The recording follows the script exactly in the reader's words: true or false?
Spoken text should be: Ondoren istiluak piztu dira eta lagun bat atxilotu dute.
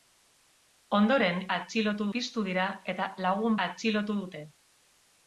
false